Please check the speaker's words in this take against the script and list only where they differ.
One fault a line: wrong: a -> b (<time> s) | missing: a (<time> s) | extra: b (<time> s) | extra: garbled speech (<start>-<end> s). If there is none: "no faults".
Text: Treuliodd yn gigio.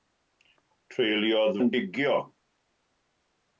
no faults